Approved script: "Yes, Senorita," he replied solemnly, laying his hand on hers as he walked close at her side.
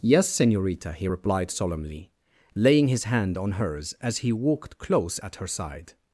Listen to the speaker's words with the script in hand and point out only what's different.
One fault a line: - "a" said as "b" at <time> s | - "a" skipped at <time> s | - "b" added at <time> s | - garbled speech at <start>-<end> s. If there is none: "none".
none